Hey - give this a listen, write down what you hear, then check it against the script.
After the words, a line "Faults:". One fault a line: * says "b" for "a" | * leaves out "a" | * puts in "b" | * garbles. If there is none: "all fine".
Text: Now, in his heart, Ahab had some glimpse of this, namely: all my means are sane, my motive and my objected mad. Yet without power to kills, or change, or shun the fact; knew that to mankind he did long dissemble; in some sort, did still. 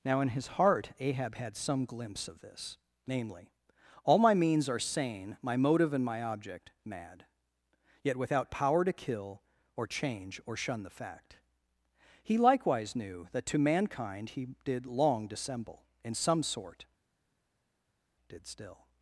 Now, in his heart, Ahab had some glimpse of this, namely: all my means are sane, my motive and my object mad. Yet without power to kill, or change, or shun the fact; he likewise knew that to mankind he did long dissemble; in some sort, did still.
Faults:
* says "object" for "objected"
* says "kill" for "kills"
* puts in "he likewise"